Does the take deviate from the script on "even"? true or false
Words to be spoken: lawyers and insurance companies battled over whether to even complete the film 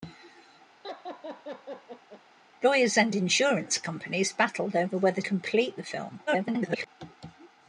true